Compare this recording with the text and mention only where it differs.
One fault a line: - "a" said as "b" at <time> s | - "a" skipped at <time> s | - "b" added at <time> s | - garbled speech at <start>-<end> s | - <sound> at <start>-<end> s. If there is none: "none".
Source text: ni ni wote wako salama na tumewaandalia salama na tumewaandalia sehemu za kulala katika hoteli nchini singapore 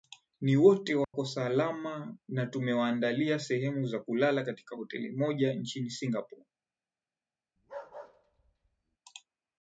- "ni" skipped at 0.6 s
- dropout at 1.0-1.1 s
- "salama na tumewaandalia" skipped at 3.4 s
- "moja" added at 5.1 s
- bark at 7.6-9.0 s